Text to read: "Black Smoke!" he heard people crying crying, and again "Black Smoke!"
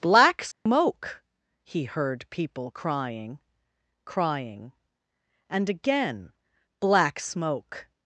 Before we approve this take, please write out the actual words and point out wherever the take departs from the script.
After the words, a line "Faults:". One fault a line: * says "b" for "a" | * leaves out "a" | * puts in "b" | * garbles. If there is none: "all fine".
"Black Smoke!" he heard people crying crying, and again "Black Smoke!"
Faults:
all fine